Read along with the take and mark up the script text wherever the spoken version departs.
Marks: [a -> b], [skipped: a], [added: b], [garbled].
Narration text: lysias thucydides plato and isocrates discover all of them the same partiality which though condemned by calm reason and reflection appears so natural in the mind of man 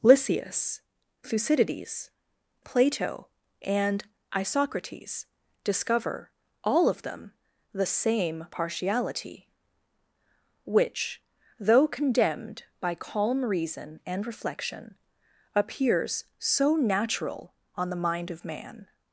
lysias thucydides plato and isocrates discover all of them the same partiality which though condemned by calm reason and reflection appears so natural [in -> on] the mind of man